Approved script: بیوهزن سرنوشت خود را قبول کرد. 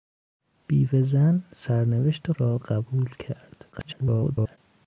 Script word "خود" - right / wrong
wrong